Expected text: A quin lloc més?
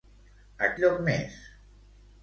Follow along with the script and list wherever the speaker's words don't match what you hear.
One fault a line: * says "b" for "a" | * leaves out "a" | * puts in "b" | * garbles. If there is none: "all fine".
* leaves out "quin"